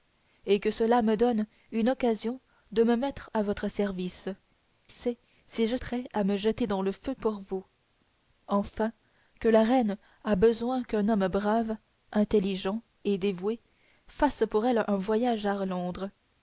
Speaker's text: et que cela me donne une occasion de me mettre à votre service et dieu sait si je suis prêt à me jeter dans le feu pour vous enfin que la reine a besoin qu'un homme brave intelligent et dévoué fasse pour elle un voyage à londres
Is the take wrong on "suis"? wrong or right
wrong